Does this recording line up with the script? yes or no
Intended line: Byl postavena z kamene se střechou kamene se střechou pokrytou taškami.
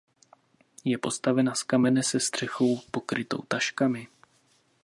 no